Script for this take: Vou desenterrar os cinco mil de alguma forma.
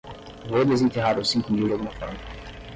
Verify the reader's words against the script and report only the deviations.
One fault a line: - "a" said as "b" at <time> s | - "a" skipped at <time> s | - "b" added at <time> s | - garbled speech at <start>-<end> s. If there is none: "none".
none